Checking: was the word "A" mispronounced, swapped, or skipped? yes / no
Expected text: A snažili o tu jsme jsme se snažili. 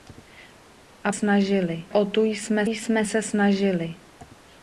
no